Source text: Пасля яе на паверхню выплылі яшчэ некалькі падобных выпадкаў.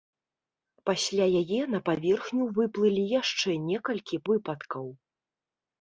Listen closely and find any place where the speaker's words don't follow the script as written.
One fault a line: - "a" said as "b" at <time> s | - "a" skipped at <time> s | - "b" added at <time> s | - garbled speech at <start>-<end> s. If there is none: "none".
- "падобных" skipped at 4.2 s